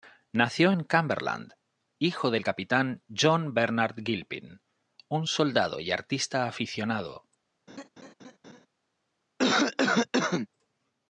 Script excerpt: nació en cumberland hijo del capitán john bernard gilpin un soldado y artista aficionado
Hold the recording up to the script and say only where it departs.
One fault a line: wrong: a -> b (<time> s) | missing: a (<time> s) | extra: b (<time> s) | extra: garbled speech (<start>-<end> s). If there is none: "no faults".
no faults